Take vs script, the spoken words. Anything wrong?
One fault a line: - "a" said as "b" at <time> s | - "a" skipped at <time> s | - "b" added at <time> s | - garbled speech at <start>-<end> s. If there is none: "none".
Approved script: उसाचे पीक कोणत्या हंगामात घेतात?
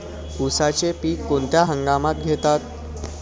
none